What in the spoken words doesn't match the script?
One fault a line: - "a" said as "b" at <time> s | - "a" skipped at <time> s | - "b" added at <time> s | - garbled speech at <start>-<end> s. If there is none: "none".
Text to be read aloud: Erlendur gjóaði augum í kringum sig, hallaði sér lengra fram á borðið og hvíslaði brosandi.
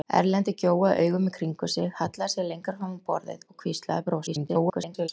- garbled speech at 4.3-5.1 s